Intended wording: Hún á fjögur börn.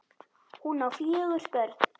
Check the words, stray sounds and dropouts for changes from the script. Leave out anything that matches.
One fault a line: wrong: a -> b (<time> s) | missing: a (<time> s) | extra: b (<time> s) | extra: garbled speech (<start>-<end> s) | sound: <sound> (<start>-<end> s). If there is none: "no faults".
no faults